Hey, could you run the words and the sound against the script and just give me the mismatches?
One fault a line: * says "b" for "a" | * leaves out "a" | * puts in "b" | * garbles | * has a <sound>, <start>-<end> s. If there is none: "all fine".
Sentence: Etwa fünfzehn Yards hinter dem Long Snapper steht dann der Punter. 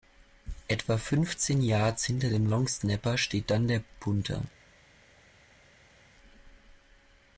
all fine